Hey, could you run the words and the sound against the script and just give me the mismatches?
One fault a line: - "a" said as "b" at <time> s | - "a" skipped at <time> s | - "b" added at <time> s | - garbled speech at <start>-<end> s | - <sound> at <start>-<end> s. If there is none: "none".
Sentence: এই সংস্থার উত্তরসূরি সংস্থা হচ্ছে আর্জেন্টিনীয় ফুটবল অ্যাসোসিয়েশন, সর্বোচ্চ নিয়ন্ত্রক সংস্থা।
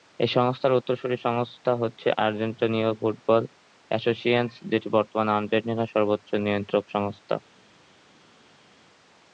- "যেটি বর্তমানে আর্জেন্টিনার" added at 4.7 s